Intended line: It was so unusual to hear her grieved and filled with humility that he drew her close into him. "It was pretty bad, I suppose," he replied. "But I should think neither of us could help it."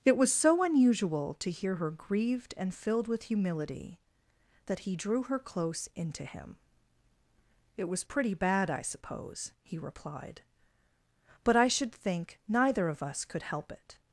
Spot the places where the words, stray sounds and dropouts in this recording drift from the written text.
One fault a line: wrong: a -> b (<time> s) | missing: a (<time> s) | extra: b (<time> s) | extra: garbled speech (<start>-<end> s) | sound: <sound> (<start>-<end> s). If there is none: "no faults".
no faults